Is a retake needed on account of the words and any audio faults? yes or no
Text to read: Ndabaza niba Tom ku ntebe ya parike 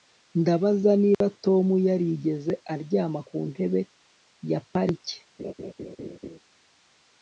yes